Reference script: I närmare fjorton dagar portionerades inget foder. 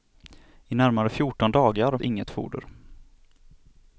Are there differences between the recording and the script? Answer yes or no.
yes